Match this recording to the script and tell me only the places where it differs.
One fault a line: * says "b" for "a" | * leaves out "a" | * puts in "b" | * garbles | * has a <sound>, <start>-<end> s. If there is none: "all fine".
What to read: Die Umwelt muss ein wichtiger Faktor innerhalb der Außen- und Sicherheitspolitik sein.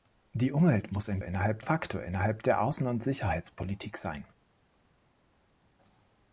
* says "innerhalb" for "wichtiger"